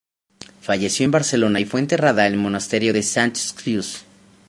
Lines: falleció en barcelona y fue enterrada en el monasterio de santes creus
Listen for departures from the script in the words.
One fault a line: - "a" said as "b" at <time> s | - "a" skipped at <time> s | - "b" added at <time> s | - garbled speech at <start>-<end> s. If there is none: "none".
none